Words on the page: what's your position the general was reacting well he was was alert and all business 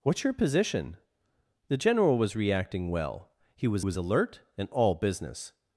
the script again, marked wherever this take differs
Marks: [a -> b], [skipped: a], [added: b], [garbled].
what's your position the general was reacting well he was was alert and all business